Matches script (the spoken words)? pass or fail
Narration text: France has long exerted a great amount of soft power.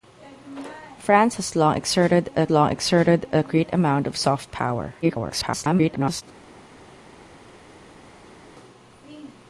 fail